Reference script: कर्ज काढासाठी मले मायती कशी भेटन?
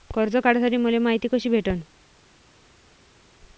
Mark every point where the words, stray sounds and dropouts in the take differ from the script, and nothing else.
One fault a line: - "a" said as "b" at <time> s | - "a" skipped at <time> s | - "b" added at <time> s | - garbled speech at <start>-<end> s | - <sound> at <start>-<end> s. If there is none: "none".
none